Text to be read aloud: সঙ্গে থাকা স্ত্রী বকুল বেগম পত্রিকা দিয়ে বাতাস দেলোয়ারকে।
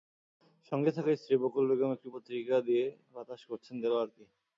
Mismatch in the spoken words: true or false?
true